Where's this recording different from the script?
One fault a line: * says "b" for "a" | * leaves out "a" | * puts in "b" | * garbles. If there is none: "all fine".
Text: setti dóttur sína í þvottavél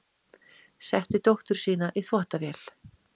all fine